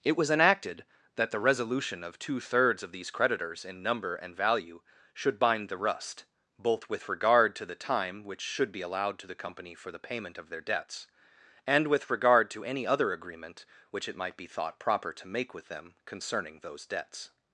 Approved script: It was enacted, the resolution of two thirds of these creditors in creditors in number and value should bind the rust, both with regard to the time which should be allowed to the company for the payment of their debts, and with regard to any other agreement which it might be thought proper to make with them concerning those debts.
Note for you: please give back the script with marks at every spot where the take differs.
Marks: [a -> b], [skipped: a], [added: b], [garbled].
It was enacted, [added: that] the resolution of two thirds of these creditors in [skipped: creditors in] number and value should bind the rust, both with regard to the time which should be allowed to the company for the payment of their debts, and with regard to any other agreement which it might be thought proper to make with them concerning those debts.